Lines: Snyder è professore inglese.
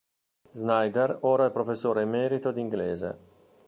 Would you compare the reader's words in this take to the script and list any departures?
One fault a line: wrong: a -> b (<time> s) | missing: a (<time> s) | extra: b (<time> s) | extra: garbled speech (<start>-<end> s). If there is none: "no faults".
extra: ora (1.2 s)
extra: emerito di (2.0 s)